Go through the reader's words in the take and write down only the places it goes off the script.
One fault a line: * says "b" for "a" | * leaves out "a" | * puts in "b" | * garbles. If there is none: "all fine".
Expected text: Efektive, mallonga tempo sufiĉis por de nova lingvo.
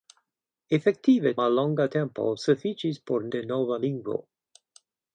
all fine